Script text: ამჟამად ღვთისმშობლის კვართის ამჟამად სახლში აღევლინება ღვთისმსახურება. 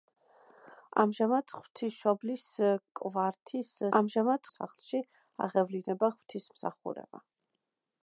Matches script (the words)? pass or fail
pass